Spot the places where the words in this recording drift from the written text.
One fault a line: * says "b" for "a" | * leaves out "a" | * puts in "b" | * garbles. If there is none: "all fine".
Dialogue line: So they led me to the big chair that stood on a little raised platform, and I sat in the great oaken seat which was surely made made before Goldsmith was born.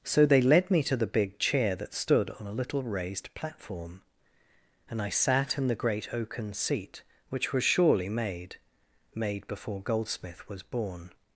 all fine